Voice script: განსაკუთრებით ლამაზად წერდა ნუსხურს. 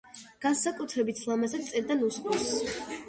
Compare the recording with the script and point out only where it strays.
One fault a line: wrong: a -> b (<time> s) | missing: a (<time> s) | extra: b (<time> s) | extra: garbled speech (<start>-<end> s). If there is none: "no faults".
no faults